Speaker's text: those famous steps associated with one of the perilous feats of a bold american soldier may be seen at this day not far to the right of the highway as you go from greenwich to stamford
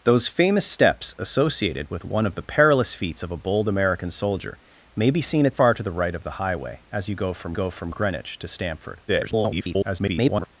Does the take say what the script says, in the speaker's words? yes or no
no